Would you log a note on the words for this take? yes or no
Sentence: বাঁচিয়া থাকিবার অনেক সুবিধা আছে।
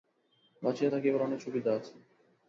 no